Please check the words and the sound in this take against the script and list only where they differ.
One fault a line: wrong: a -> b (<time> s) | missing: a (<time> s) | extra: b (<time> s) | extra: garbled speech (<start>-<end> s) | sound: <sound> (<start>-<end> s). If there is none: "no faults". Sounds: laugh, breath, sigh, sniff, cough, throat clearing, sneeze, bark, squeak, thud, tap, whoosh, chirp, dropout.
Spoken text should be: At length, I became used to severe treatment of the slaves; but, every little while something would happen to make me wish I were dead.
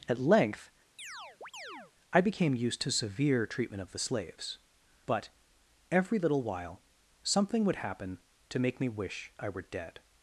sound: chirp (1.0-1.9 s)